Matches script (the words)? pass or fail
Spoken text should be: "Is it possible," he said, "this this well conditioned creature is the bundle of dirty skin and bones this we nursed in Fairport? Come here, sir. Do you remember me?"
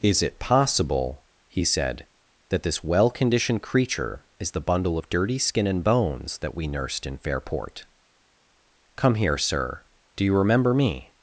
fail